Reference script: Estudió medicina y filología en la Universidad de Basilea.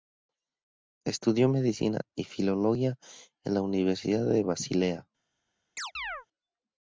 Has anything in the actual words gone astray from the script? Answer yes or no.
no